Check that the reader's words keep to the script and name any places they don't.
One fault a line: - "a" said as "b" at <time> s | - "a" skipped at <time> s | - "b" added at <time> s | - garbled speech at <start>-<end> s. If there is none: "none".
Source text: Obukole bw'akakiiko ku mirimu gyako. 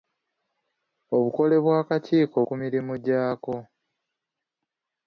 none